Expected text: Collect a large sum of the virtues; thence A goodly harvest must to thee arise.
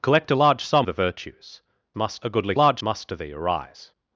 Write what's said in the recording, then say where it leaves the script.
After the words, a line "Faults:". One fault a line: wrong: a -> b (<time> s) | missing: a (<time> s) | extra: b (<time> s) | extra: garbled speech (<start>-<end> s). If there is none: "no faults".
Collect a large sum the virtues; must A goodly large must to thee arise.
Faults:
missing: of (0.9 s)
wrong: thence -> must (1.9 s)
wrong: harvest -> large (2.5 s)